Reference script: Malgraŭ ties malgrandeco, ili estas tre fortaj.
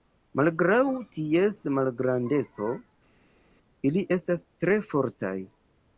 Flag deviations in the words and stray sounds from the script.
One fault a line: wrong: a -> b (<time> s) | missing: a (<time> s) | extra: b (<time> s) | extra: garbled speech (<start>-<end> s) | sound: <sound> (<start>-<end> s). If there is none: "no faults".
no faults